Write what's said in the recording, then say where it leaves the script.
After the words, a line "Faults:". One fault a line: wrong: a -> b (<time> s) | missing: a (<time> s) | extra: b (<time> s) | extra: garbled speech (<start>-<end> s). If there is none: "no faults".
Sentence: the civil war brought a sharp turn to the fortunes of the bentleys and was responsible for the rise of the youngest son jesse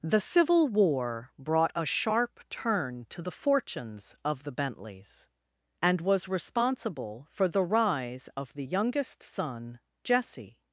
the civil war brought a sharp turn to the fortunes of the bentleys and was responsible for the rise of the youngest son jesse
Faults:
no faults